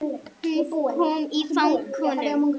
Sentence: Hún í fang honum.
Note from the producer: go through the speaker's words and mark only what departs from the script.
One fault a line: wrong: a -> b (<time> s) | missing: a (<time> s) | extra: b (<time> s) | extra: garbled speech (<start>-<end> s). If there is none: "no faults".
extra: kom (1.0 s)